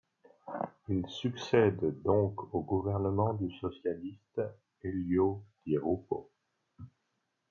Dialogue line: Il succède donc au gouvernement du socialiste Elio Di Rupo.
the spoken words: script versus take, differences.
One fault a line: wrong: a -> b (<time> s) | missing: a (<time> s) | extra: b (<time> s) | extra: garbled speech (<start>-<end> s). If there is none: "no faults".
no faults